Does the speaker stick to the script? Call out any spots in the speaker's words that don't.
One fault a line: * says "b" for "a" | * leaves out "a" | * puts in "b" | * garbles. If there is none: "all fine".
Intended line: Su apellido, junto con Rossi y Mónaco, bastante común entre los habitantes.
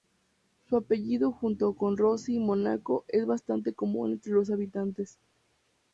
* puts in "es"